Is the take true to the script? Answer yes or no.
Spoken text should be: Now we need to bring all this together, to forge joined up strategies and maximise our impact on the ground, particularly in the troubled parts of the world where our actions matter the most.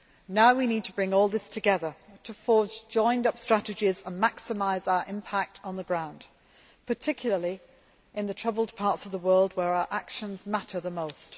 yes